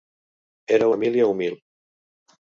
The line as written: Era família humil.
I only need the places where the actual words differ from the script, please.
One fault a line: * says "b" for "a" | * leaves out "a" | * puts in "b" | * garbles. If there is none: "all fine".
all fine